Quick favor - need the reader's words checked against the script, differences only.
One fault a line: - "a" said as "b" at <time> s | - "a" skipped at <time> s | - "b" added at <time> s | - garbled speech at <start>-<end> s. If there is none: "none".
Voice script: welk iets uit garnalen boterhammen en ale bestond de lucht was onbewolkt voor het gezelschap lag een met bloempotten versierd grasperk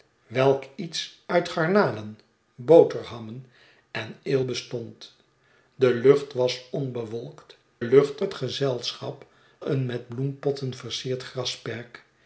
- "voor" said as "lucht" at 7.8 s
- "lag" skipped at 9.3 s